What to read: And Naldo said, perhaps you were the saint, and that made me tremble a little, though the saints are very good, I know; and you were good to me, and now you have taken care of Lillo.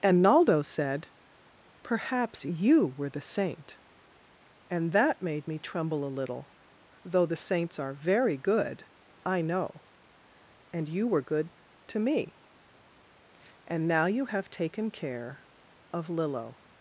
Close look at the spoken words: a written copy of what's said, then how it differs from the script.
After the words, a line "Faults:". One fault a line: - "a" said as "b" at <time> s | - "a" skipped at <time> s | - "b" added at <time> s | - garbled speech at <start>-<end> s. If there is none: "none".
And Naldo said, perhaps you were the saint, and that made me tremble a little, though the saints are very good, I know; and you were good to me, and now you have taken care of Lillo.
Faults:
none